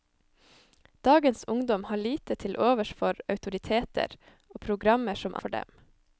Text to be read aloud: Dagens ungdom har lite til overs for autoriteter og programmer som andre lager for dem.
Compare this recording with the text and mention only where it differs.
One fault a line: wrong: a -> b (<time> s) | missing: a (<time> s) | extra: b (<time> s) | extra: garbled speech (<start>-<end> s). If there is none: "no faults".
missing: andre lager (5.4 s)